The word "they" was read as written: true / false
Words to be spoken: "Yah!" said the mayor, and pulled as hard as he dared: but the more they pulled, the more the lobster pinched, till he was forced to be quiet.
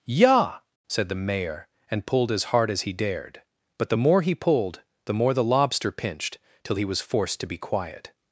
false